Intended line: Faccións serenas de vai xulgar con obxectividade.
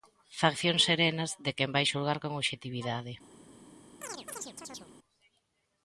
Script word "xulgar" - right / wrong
right